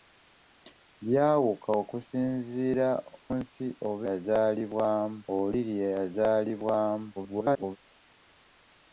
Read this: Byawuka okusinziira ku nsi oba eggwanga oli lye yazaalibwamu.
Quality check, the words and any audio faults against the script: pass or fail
fail